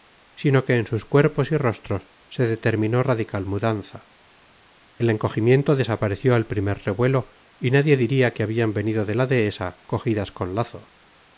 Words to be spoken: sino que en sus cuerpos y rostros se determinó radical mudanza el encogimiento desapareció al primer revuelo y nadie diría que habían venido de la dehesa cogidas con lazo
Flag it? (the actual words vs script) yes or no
no